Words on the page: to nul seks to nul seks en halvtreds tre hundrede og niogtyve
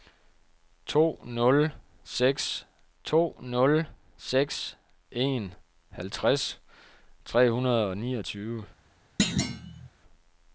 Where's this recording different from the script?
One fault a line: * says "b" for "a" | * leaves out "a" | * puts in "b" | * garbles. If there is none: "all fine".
all fine